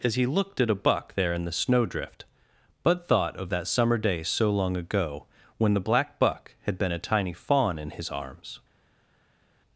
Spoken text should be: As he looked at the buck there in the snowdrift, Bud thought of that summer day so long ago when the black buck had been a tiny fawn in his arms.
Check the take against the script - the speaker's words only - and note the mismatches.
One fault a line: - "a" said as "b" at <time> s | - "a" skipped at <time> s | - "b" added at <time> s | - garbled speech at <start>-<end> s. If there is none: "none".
- "the" said as "a" at 0.7 s